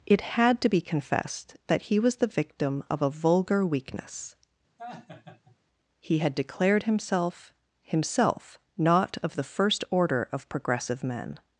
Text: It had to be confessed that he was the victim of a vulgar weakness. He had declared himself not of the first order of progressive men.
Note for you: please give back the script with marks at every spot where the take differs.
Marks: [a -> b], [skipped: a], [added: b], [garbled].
It had to be confessed that he was the victim of a vulgar weakness. He had declared himself [added: himself] not of the first order of progressive men.